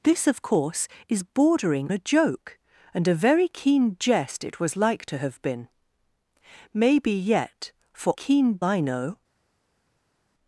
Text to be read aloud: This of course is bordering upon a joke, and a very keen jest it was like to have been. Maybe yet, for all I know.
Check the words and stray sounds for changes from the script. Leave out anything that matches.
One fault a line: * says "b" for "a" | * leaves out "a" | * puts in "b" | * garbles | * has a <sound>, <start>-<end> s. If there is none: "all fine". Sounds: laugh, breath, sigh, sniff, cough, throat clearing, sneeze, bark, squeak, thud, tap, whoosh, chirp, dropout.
* leaves out "upon"
* says "keen" for "all"